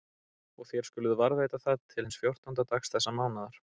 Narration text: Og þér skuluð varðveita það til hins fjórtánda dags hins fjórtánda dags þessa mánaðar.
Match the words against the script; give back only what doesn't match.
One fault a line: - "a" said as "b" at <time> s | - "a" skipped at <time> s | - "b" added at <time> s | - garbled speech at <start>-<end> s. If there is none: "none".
- "hins fjórtánda dags" skipped at 3.0 s